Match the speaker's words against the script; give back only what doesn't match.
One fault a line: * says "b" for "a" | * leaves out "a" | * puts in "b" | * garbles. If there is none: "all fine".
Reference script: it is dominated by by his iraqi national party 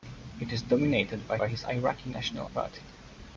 all fine